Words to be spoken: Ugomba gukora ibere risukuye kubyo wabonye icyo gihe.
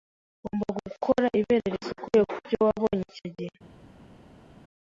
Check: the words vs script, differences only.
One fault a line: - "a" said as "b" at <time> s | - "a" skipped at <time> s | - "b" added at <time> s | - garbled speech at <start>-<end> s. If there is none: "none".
none